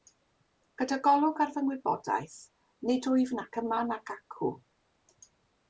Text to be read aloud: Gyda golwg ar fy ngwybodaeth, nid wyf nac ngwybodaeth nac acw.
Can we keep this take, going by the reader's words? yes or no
no